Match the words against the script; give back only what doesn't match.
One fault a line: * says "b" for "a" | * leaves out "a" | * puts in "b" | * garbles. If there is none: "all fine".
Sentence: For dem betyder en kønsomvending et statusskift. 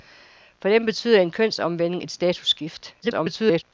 * garbles